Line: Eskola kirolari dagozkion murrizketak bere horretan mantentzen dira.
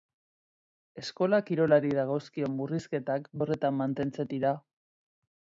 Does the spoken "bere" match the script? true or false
false